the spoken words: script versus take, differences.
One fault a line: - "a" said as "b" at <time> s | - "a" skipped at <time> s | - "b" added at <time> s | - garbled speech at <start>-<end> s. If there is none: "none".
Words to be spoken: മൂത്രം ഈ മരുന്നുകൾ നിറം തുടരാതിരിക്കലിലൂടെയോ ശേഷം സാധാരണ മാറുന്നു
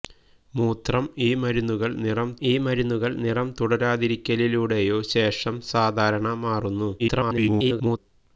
- "ഈ മരുന്നുകൾ നിറം" added at 2.4 s
- garbled speech at 7.0-8.0 s